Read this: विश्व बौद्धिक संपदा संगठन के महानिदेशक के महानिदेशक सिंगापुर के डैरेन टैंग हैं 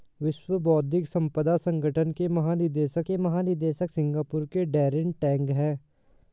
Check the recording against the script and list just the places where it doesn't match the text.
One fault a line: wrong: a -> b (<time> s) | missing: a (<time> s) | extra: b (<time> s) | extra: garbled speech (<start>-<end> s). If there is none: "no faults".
no faults